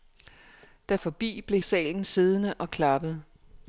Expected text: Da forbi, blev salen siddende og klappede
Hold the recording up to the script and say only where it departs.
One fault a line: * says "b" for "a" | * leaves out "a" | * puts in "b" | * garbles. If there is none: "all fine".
all fine